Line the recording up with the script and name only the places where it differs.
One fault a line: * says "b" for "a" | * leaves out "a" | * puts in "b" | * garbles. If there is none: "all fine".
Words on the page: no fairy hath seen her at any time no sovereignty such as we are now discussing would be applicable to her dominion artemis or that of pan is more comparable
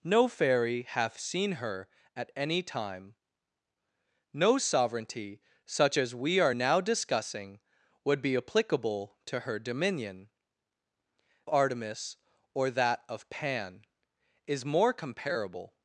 all fine